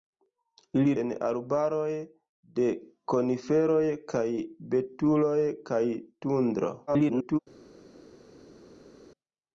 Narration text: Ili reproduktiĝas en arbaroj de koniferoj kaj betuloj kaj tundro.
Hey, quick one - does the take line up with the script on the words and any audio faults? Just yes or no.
no